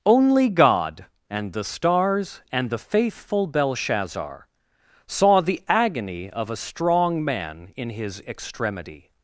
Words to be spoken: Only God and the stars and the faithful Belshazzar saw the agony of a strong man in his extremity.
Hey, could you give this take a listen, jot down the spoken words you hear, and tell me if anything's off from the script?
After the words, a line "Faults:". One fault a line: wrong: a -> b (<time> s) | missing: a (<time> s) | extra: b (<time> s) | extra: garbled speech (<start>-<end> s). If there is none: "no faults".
Only God and the stars and the faithful Belshazzar saw the agony of a strong man in his extremity.
Faults:
no faults